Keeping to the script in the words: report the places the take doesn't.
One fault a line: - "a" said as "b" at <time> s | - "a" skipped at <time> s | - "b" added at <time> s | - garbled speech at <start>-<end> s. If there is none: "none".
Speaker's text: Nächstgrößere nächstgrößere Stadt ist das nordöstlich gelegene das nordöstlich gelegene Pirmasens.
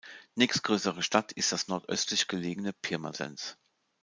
- "nächstgrößere" skipped at 1.0 s
- "das nordöstlich gelegene" skipped at 2.7 s